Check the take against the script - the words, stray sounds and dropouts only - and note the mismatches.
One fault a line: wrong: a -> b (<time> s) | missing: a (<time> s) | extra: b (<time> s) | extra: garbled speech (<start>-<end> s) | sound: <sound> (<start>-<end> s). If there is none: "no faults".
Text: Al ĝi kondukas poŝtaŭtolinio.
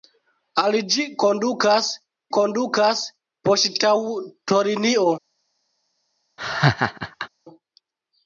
extra: kondukas (2.4 s)
sound: laugh (6.4-7.3 s)